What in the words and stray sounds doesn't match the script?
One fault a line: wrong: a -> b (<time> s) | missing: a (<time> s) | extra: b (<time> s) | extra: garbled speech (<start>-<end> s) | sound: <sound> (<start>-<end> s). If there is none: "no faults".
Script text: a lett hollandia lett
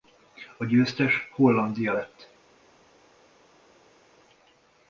wrong: lett -> győztes (0.7 s)